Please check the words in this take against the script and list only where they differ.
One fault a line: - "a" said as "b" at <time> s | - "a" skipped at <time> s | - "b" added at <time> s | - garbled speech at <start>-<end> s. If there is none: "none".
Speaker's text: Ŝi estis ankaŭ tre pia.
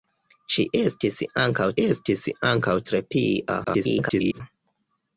- "estis ankaŭ" added at 1.8 s
- garbled speech at 3.6-4.4 s